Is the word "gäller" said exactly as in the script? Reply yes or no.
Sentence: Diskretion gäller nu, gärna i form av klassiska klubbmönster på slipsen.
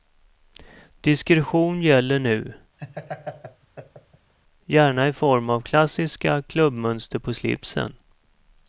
yes